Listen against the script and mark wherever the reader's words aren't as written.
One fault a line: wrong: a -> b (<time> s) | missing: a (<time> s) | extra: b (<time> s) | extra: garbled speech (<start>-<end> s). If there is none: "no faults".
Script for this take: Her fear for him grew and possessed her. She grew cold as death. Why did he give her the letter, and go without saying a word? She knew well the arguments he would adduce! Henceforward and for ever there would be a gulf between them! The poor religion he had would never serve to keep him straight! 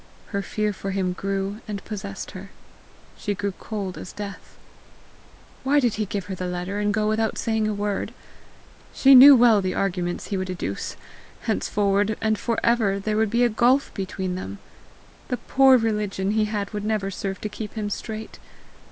no faults